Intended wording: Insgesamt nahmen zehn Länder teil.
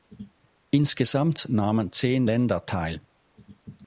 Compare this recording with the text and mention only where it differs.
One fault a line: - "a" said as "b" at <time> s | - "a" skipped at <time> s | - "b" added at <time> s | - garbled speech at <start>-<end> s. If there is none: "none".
none